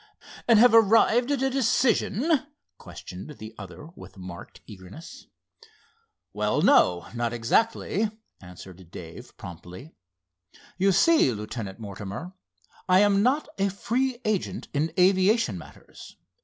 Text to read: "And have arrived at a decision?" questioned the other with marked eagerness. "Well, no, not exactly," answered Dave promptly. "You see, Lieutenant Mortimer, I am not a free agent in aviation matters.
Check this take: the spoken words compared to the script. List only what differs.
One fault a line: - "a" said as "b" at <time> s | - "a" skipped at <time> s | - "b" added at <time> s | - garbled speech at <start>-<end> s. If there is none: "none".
none